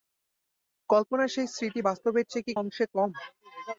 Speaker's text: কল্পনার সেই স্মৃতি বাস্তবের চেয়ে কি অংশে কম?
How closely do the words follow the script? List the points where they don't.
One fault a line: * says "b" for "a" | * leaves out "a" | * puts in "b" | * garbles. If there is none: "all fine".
all fine